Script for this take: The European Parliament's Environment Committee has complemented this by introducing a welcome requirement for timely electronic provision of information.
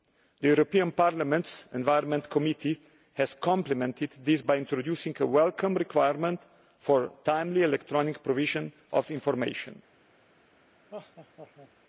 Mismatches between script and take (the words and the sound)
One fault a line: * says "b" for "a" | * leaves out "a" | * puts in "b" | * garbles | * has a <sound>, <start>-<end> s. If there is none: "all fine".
* has a laugh, 10.9-11.7 s